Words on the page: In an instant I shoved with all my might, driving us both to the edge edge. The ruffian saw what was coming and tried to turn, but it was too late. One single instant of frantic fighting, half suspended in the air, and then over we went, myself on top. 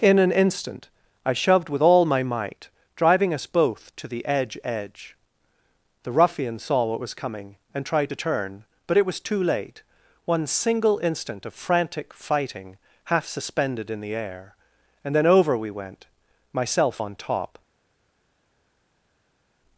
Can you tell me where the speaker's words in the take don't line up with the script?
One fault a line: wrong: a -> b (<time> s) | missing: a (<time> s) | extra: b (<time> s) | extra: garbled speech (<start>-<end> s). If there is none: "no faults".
no faults